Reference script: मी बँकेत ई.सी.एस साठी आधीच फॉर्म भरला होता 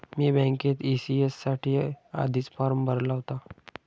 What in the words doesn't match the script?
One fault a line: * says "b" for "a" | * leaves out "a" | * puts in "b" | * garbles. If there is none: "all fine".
all fine